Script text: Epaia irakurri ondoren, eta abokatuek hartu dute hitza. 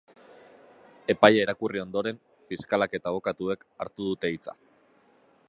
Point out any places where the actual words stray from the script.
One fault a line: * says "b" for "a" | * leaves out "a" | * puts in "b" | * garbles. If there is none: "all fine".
* puts in "fiskalak"